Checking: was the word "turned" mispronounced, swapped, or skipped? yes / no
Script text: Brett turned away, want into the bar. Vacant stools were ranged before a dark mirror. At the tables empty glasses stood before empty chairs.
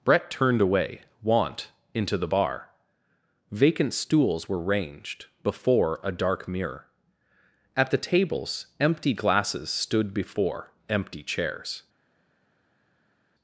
no